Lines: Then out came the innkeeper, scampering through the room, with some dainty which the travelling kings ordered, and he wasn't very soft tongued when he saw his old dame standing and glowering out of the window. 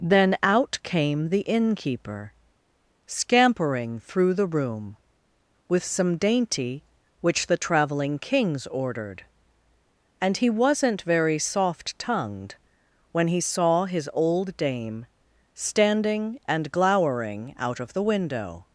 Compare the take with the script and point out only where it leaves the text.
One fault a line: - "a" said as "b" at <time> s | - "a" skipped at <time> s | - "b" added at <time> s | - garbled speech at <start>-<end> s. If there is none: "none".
none